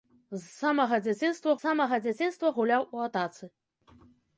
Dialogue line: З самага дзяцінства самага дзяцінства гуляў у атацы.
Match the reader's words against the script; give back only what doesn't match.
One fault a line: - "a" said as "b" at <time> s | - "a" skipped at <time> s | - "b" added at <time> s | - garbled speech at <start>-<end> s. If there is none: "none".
none